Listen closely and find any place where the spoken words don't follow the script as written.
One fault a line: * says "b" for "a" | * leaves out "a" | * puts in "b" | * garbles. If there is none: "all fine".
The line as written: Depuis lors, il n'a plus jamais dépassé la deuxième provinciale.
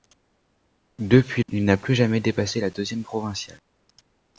* leaves out "lors"